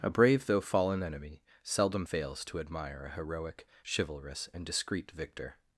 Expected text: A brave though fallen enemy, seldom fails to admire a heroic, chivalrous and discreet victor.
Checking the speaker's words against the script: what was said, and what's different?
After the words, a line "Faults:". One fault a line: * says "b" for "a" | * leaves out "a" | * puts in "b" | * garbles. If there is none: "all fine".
A brave though fallen enemy, seldom fails to admire a heroic, chivalrous and discreet victor.
Faults:
all fine